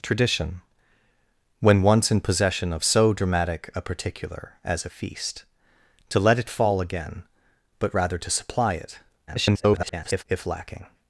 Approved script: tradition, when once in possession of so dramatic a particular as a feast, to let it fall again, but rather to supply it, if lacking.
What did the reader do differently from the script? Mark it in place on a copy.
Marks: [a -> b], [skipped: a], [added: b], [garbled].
tradition, when once in possession of so dramatic a particular as a feast, to let it fall again, but rather to supply it, [garbled] if lacking.